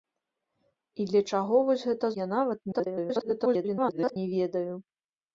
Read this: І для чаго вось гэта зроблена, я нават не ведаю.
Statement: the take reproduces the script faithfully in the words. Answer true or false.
false